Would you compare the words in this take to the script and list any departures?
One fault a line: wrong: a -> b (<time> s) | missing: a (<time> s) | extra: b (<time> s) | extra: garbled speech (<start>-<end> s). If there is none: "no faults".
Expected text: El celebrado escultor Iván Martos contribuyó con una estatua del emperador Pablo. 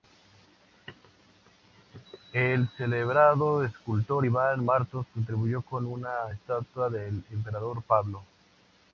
no faults